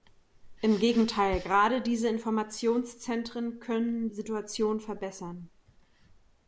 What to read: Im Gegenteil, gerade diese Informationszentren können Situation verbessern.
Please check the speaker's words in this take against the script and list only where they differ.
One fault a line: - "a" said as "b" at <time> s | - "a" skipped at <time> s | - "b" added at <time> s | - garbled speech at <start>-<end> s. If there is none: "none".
none